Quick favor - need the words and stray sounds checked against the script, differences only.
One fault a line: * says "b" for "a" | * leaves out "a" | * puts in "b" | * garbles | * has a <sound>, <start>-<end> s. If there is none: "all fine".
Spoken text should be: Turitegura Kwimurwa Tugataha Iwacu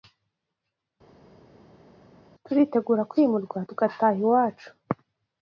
all fine